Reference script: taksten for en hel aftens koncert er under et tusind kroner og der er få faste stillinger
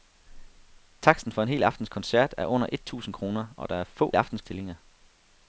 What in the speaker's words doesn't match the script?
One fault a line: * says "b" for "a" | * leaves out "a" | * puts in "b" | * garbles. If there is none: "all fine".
* says "aftens" for "faste"